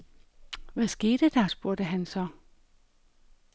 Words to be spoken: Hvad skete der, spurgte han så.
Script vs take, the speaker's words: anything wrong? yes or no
no